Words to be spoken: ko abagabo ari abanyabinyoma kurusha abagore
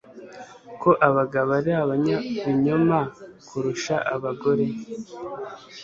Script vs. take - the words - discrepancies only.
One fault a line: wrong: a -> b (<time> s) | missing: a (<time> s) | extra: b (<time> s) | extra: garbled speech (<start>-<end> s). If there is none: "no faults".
no faults